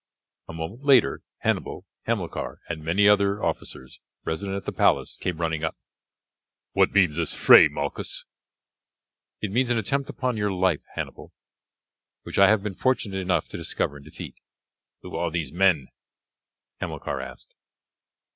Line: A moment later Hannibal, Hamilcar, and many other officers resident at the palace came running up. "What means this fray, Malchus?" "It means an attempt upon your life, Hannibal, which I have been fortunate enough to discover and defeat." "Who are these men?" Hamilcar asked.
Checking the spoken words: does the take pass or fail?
pass